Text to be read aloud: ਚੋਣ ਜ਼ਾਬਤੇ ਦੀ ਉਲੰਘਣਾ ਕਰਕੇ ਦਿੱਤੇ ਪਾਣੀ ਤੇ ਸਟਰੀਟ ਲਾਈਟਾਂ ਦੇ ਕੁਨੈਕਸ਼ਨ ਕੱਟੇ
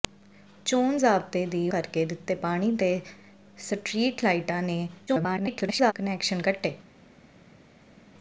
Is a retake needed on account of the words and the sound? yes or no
yes